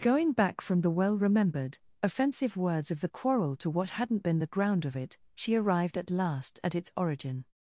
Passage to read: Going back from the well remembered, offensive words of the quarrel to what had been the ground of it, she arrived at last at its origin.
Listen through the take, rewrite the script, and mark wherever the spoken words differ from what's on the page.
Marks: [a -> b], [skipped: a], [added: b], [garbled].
Going back from the well remembered, offensive words of the quarrel to what [had -> hadn't] been the ground of it, she arrived at last at its origin.